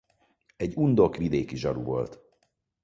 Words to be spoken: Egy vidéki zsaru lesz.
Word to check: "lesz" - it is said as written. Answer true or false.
false